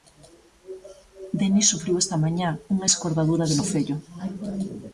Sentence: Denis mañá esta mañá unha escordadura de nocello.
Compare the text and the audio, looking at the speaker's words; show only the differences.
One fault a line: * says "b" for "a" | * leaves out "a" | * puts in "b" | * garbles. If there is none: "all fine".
* says "sufriu" for "mañá"